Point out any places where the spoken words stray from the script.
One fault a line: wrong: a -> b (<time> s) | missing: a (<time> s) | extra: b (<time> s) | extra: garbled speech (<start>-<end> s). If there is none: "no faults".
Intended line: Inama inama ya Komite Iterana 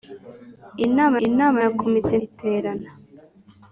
no faults